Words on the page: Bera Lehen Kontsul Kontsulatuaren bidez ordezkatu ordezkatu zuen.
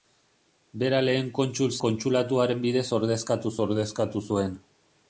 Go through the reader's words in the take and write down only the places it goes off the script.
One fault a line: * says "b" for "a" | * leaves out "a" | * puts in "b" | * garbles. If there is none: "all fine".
all fine